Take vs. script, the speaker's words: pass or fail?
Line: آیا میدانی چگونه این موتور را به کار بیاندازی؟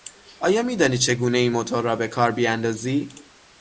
pass